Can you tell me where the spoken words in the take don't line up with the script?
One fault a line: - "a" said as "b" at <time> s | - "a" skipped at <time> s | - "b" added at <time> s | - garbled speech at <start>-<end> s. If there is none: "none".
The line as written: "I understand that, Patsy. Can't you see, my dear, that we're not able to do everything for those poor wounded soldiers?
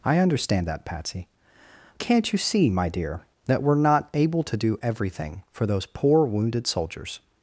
none